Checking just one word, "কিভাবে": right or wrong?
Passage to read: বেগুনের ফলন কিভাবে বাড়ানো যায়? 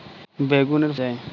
wrong